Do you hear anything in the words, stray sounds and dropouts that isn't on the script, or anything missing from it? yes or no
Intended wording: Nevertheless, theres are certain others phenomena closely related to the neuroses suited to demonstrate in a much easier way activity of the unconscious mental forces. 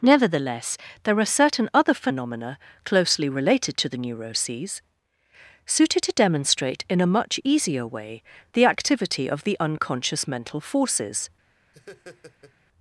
yes